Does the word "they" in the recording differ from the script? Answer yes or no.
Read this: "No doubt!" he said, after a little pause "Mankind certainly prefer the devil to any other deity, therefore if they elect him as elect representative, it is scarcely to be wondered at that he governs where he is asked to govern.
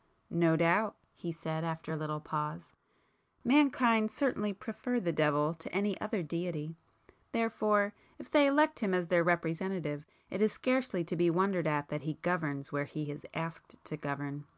no